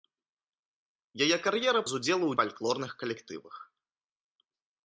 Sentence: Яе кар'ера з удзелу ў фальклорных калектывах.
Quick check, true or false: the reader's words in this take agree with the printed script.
true